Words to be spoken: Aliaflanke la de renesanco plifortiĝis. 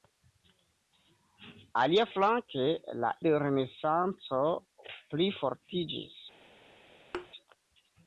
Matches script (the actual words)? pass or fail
pass